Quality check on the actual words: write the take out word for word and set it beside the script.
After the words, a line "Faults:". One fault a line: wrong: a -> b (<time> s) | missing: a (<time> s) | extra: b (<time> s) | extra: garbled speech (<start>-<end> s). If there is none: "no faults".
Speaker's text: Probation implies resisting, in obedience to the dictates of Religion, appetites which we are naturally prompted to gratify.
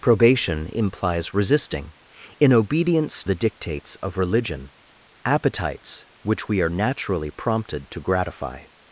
Probation implies resisting, in obedience the dictates of Religion, appetites which we are naturally prompted to gratify.
Faults:
missing: to (3.2 s)